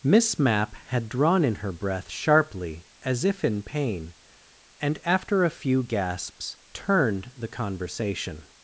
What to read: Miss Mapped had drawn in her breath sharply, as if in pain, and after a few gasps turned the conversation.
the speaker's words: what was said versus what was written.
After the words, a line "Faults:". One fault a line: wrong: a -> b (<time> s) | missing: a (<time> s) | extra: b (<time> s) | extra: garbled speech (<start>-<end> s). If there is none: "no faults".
Miss Mapp had drawn in her breath sharply, as if in pain, and after a few gasps turned the conversation.
Faults:
wrong: Mapped -> Mapp (0.4 s)